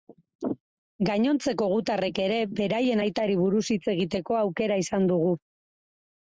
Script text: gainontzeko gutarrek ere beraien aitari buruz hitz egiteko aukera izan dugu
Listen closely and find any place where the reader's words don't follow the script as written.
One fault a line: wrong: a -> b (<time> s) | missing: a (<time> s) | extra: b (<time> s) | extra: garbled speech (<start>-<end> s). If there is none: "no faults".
no faults